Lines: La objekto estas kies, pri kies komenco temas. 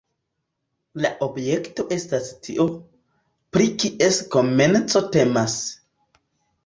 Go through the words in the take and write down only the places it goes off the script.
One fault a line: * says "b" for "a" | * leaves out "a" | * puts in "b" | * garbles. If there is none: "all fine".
* says "tio" for "kies"